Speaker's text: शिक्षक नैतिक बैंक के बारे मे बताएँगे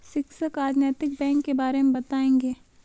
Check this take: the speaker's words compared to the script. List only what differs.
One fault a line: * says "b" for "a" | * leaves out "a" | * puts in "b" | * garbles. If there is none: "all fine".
* puts in "आज"